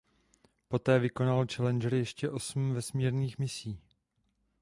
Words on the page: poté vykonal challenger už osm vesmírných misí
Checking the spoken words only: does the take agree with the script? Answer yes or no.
no